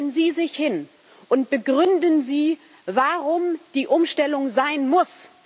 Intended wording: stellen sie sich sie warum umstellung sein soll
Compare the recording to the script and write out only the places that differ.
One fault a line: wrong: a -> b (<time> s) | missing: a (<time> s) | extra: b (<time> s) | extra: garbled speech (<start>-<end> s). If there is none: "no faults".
extra: hin und begründen (0.6 s)
extra: die (3.7 s)
wrong: soll -> muss (4.9 s)